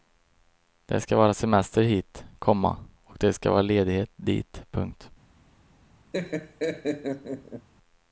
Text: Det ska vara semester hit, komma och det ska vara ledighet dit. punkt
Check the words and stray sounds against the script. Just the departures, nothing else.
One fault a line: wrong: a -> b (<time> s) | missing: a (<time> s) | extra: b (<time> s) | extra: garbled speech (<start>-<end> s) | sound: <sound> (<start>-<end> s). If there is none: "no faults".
sound: laugh (6.1-7.7 s)